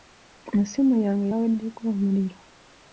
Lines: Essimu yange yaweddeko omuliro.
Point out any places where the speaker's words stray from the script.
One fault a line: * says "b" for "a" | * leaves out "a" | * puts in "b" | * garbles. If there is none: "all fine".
all fine